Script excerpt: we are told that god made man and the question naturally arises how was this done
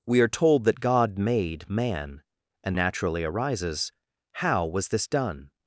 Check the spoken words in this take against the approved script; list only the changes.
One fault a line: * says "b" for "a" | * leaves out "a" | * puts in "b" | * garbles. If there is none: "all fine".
* leaves out "the question"